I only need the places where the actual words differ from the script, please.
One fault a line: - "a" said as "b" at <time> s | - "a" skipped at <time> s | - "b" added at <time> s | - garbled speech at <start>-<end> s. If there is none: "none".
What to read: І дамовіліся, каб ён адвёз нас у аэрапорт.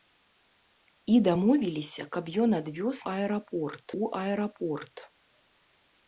- "нас" said as "аэрапорт" at 3.1 s